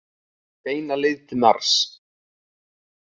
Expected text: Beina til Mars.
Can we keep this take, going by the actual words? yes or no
no